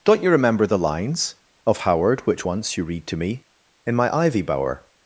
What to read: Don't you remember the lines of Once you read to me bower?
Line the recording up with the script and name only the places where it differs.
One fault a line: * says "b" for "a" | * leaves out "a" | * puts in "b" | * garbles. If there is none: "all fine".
* puts in "Howard which"
* puts in "in my ivy"